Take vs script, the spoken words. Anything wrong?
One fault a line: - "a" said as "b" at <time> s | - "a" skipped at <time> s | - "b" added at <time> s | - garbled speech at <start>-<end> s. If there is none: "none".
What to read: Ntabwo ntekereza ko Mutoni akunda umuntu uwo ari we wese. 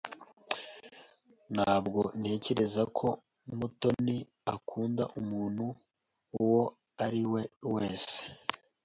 none